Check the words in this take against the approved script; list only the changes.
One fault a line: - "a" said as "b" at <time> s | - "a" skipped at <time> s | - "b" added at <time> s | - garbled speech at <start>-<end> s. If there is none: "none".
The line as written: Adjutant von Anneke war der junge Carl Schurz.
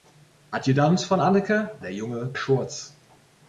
- "war" skipped at 1.8 s
- "Carl" skipped at 2.3 s